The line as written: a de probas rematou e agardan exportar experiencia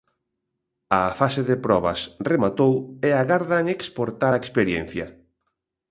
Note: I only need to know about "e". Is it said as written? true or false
true